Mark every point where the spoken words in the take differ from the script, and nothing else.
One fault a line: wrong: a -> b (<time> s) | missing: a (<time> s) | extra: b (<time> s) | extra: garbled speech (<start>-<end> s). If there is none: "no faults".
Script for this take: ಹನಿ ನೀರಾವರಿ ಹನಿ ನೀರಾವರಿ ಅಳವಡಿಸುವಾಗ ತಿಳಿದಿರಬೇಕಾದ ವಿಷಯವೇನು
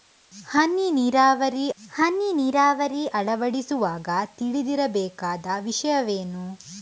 no faults